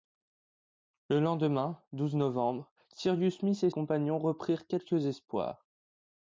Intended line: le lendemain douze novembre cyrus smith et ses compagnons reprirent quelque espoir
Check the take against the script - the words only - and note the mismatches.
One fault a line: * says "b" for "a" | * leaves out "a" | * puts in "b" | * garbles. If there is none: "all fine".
* leaves out "ses"